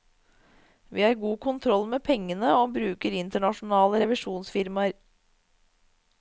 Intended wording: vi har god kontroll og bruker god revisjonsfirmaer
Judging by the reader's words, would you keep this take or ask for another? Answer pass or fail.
fail